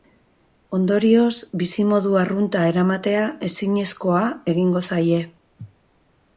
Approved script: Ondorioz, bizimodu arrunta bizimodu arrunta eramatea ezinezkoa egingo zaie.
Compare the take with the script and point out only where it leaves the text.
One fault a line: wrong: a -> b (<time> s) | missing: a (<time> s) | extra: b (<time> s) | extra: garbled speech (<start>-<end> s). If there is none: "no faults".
missing: bizimodu arrunta (2.6 s)